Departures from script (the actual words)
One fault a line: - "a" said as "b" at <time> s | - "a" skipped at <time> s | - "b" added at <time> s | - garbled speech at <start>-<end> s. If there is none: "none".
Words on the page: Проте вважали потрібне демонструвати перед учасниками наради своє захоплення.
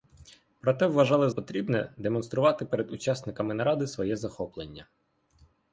none